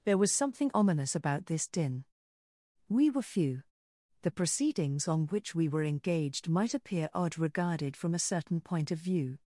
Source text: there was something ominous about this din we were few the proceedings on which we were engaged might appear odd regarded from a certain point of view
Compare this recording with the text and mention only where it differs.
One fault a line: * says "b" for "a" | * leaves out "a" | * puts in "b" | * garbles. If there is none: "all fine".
all fine